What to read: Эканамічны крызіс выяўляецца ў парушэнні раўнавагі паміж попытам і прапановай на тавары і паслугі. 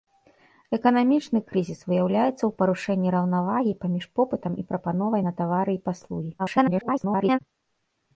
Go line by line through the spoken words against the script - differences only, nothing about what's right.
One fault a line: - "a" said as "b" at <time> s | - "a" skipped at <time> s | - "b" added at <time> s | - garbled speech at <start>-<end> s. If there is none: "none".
- garbled speech at 6.4-7.4 s